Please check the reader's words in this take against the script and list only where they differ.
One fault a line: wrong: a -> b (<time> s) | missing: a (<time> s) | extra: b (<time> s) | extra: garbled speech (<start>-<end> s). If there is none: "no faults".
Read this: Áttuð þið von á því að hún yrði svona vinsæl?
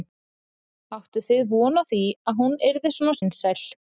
no faults